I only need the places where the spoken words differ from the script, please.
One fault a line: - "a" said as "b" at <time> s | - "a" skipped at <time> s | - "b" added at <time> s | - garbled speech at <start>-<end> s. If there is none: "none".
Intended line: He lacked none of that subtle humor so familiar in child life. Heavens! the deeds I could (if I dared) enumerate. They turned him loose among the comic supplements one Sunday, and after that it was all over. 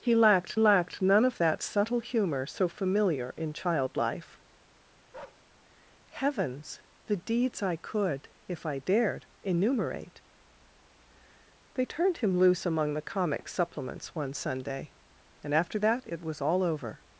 - "lacked" added at 0.6 s